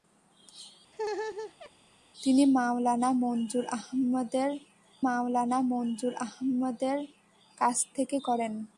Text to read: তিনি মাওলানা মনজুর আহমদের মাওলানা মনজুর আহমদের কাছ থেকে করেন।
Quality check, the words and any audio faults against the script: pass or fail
fail